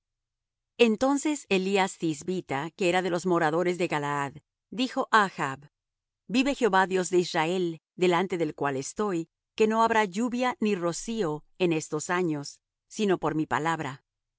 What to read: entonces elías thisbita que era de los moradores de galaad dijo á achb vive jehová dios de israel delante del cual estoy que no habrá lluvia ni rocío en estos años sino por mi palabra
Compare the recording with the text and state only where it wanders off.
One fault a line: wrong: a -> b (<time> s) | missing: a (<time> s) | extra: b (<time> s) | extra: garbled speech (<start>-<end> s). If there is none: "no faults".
no faults